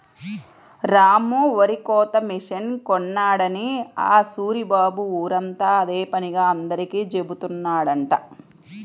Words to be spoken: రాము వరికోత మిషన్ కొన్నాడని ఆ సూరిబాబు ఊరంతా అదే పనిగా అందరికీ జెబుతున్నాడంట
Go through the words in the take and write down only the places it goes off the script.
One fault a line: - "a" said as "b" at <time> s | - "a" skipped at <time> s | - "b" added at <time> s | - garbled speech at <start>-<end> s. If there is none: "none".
none